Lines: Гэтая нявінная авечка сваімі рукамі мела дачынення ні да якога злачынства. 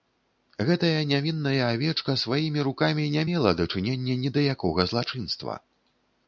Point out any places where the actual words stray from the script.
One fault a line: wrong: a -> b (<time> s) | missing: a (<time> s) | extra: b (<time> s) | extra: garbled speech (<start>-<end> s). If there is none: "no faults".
extra: не (3.2 s)